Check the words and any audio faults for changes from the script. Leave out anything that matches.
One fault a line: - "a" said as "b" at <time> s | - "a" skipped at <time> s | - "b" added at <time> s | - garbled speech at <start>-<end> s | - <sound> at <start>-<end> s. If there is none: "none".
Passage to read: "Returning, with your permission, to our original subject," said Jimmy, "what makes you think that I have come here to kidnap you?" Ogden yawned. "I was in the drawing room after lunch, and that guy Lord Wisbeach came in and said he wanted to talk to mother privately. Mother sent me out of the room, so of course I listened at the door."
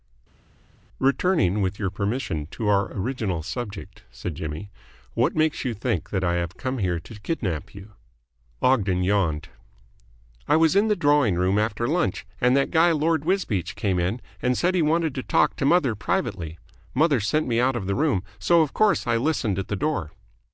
none